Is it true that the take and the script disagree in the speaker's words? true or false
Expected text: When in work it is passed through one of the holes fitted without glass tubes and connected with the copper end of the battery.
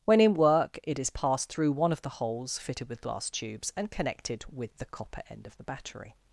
true